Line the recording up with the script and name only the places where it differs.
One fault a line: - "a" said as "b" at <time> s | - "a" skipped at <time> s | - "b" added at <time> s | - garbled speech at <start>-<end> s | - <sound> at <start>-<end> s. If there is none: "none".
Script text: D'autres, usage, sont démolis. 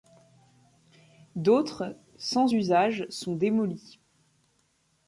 - "sans" added at 2.2 s